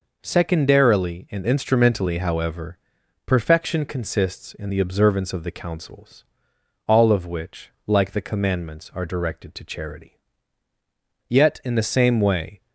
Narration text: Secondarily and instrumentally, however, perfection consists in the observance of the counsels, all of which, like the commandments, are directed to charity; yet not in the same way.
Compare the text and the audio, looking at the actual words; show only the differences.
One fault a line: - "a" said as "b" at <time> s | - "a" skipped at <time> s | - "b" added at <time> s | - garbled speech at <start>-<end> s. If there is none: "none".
- "not" skipped at 11.6 s